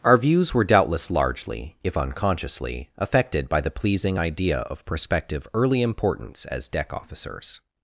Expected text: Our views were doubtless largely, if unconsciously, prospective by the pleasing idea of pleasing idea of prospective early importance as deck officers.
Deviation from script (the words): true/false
true